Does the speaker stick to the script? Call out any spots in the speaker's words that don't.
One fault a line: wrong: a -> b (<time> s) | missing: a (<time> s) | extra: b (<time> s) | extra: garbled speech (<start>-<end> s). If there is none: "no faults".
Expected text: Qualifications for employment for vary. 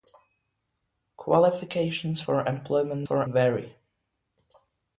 no faults